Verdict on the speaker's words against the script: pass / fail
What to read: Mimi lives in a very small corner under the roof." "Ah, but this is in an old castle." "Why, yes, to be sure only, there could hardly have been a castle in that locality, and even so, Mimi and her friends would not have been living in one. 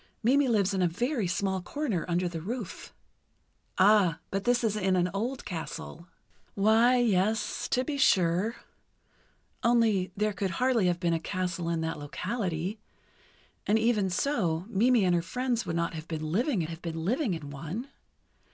fail